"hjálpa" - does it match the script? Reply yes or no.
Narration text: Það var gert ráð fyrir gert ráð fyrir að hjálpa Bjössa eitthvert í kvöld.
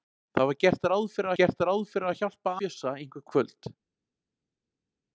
yes